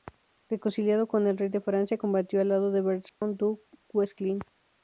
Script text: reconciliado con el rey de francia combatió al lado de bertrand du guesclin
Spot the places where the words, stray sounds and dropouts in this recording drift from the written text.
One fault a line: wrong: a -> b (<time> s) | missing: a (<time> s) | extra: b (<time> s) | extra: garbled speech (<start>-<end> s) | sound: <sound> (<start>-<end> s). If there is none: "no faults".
sound: dropout (3.1-3.2 s)